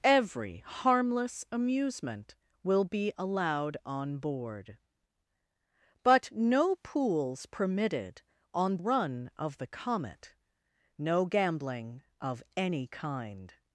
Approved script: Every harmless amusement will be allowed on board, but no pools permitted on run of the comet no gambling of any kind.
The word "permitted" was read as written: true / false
true